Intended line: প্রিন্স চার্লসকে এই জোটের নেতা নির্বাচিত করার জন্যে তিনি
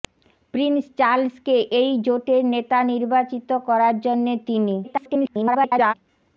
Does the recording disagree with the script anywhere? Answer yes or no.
yes